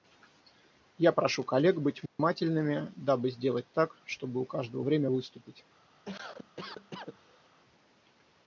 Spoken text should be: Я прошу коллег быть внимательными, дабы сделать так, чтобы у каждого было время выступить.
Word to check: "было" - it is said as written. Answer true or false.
false